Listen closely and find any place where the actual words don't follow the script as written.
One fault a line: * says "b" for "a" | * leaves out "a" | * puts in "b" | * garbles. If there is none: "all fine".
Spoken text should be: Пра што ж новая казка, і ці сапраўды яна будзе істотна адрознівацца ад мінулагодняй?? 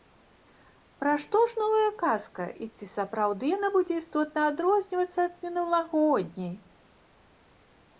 all fine